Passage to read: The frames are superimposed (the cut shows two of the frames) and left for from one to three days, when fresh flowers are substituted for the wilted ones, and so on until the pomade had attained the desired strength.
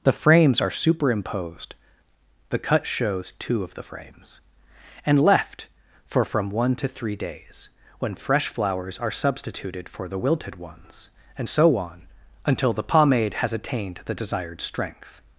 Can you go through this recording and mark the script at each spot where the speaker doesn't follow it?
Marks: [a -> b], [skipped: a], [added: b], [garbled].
The frames are superimposed (the cut shows two of the frames) and left for from one to three days, when fresh flowers are substituted for the wilted ones, and so on until the pomade [had -> has] attained the desired strength.